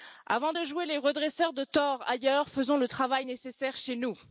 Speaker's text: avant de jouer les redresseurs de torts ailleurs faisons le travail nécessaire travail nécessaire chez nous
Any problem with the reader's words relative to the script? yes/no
yes